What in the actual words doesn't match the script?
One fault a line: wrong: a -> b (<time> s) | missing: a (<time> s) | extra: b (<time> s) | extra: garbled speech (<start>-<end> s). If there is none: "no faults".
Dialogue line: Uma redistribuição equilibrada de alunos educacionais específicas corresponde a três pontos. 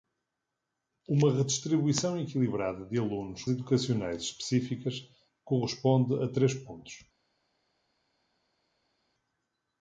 no faults